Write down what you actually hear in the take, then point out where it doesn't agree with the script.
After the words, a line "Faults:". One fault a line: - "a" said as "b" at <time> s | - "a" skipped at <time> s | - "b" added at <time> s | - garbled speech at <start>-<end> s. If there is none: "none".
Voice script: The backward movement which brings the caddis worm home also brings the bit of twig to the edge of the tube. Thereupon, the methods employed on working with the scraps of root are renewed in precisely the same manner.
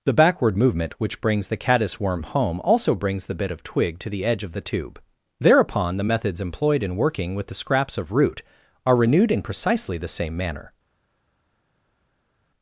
The backward movement which brings the caddis worm home also brings the bit of twig to the edge of the tube. Thereupon, the methods employed in working with the scraps of root are renewed in precisely the same manner.
Faults:
- "on" said as "in" at 6.8 s